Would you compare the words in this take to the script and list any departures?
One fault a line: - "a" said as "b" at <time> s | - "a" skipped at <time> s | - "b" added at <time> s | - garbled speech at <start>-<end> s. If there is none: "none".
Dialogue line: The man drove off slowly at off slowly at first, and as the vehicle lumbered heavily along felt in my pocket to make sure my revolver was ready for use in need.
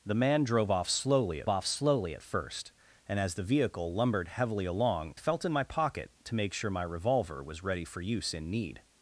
none